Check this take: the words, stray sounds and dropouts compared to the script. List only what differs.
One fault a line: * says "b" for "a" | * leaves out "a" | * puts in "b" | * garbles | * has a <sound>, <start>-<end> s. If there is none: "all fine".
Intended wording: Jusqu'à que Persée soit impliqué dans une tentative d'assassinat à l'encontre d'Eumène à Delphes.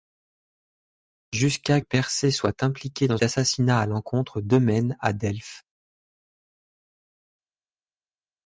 * leaves out "que"
* leaves out "une tentative"